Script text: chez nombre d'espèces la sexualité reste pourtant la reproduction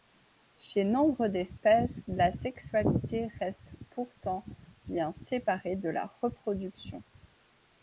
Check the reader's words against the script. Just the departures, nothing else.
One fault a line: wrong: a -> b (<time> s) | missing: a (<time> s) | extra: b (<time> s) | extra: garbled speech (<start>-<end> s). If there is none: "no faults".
extra: bien séparée de (4.9 s)